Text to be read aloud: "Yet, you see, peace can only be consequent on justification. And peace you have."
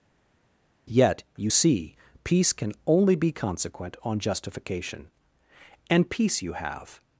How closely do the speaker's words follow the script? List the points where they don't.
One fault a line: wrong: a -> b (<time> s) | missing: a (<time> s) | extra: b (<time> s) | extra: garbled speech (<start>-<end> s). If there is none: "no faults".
no faults